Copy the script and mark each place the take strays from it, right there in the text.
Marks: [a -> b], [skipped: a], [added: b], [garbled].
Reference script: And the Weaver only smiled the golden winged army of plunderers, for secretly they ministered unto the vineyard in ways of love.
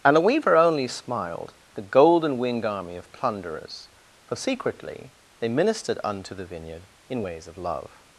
And the Weaver only smiled the golden winged army of plunderers, for secretly they ministered unto the vineyard in ways of love.